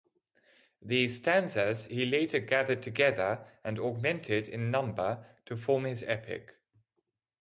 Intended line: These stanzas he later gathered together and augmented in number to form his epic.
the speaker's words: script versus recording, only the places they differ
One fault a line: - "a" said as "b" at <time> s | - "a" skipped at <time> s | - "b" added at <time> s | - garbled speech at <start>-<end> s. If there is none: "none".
none